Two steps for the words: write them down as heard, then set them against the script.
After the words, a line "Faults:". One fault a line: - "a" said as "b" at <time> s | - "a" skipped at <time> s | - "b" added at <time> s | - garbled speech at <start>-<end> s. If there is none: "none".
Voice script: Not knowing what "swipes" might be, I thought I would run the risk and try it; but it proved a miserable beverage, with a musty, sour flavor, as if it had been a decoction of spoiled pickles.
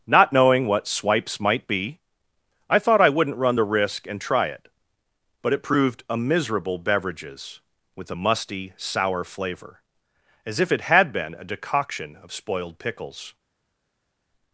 Not knowing what "swipes" might be, I thought I wouldn't run the risk and try it; but it proved a miserable beverages, with a musty, sour flavor, as if it had been a decoction of spoiled pickles.
Faults:
- "would" said as "wouldn't" at 3.1 s
- "beverage" said as "beverages" at 6.8 s